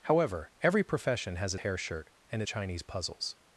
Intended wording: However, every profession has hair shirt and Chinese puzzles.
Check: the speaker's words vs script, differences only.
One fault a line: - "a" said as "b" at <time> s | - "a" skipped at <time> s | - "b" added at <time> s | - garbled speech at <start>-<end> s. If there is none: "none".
none